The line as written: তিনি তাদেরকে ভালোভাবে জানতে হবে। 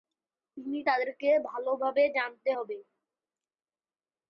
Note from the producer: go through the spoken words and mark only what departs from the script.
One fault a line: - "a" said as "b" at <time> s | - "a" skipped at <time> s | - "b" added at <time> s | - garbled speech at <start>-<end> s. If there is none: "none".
none